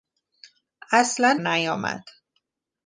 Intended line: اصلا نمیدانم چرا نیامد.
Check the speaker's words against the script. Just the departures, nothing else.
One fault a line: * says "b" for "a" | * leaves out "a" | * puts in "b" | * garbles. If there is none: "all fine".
* leaves out "نمیدانم چرا"